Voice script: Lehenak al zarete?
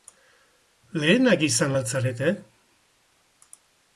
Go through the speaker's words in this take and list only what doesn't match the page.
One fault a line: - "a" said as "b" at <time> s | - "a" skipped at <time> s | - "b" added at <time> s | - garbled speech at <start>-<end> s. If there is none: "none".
- "izan" added at 1.5 s